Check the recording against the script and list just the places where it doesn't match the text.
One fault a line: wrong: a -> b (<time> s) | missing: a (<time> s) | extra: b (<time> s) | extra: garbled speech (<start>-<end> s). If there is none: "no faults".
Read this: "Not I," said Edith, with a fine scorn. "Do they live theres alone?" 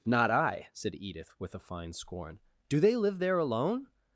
wrong: theres -> there (3.2 s)